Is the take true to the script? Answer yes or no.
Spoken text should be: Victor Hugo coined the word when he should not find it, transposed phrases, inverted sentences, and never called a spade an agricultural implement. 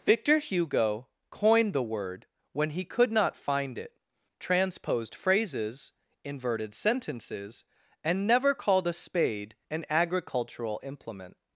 no